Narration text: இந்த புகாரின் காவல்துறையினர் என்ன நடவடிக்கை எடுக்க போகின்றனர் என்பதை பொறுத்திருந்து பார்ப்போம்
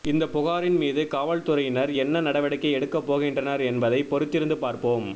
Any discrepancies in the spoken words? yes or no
yes